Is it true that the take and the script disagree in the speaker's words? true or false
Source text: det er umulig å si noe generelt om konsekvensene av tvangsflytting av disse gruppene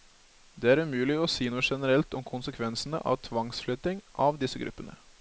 false